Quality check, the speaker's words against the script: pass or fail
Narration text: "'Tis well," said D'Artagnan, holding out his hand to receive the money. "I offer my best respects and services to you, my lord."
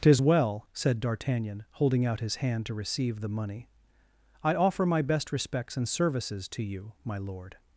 pass